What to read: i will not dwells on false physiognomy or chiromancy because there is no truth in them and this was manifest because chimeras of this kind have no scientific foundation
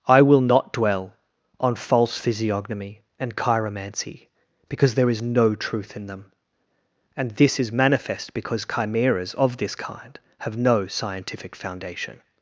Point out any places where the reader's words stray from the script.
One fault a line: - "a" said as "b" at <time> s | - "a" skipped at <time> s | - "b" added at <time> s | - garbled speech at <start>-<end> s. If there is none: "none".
- "dwells" said as "dwell" at 0.7 s
- "or" said as "and" at 3.2 s
- "was" said as "is" at 7.6 s